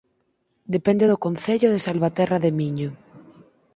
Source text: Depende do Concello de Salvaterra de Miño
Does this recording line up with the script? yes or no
yes